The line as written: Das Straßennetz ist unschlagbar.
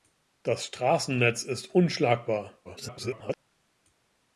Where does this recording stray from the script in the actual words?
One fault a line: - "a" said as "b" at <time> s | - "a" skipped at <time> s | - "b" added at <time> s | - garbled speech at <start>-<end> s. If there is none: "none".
- garbled speech at 2.6-3.4 s